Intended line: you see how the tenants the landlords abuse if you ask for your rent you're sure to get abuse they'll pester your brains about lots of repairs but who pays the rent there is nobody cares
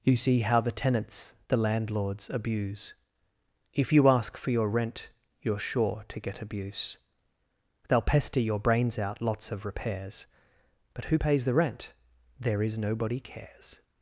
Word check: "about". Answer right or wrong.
wrong